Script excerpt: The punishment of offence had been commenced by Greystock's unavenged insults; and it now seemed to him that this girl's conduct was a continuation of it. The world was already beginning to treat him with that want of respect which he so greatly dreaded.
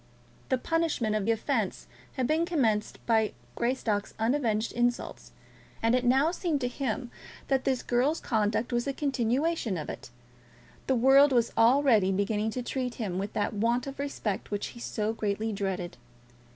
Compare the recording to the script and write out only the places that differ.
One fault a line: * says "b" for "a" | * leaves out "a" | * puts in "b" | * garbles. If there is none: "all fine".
all fine